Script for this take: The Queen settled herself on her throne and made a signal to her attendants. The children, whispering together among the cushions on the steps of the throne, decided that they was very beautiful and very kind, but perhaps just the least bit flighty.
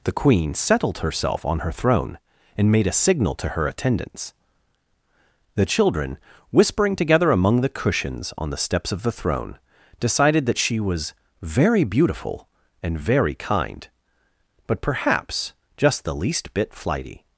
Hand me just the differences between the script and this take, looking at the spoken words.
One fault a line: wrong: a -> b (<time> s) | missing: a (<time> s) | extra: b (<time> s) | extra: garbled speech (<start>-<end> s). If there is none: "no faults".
wrong: they -> she (10.6 s)